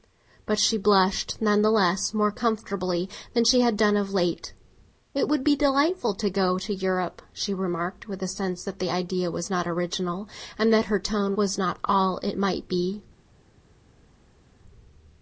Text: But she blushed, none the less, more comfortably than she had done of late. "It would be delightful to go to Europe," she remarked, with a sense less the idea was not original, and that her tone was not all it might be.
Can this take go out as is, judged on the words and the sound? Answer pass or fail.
fail